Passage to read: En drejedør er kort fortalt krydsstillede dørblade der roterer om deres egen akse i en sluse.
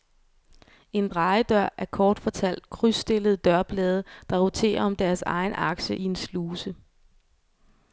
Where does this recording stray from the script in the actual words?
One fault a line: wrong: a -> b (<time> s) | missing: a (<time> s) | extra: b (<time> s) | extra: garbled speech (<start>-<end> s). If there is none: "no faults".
no faults